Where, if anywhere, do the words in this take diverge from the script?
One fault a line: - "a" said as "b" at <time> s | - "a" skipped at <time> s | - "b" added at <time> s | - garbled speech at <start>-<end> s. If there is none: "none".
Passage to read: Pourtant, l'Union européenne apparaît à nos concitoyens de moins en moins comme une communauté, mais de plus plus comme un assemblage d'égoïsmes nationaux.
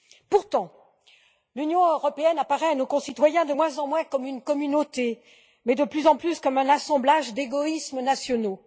- "en" added at 6.1 s